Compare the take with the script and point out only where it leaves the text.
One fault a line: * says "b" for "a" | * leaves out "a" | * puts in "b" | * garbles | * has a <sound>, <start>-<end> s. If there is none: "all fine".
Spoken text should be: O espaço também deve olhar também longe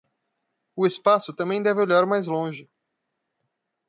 * says "mais" for "também"